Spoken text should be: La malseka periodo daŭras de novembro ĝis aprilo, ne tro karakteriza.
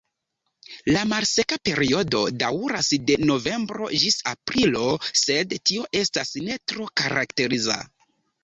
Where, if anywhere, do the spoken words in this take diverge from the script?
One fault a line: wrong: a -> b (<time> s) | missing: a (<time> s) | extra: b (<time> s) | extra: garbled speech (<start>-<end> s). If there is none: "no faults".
extra: sed tio estas (5.2 s)